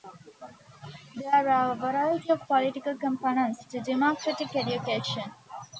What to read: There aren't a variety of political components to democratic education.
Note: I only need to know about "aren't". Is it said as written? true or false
false